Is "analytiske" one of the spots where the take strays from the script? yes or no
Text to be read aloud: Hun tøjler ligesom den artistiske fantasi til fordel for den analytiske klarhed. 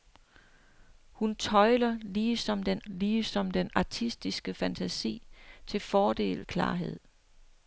yes